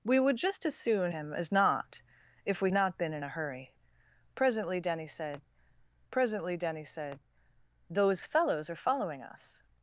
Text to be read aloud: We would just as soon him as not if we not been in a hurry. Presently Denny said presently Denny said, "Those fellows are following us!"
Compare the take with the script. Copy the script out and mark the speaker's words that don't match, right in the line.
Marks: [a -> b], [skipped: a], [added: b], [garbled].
We would just as soon him as not if we not been in a hurry. Presently Denny said presently Denny said, "Those fellows are following us!"